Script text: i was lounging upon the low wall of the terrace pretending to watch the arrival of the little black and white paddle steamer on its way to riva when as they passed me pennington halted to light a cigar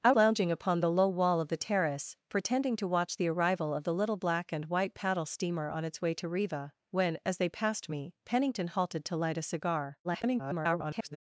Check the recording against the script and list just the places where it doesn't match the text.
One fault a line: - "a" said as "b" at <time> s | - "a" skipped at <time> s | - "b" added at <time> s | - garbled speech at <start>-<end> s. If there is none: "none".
- "was" skipped at 0.1 s
- garbled speech at 10.0-11.2 s